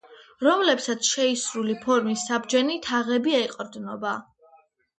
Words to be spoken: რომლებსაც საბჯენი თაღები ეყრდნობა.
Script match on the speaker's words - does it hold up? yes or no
no